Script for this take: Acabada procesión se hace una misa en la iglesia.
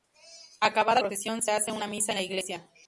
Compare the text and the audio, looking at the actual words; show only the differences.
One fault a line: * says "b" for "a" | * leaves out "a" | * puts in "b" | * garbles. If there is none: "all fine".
all fine